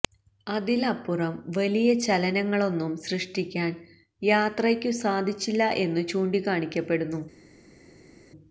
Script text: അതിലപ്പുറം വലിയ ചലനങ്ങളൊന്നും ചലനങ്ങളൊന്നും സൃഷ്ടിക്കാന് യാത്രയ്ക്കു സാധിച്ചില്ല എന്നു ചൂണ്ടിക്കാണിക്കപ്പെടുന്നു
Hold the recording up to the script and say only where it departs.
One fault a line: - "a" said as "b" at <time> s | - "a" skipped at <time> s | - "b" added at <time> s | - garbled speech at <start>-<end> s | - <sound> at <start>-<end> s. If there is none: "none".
- "ചലനങ്ങളൊന്നും" skipped at 2.9 s